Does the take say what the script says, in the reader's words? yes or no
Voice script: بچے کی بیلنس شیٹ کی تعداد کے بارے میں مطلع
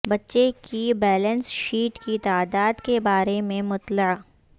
yes